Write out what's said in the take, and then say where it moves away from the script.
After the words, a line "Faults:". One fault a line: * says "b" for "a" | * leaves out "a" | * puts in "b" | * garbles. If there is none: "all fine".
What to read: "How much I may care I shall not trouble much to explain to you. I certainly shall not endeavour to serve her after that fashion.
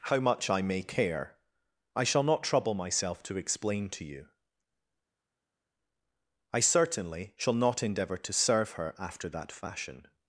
"How much I may care I shall not trouble myself to explain to you. I certainly shall not endeavour to serve her after that fashion.
Faults:
* says "myself" for "much"